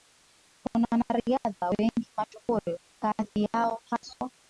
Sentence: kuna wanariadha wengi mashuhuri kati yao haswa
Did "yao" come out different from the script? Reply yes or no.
no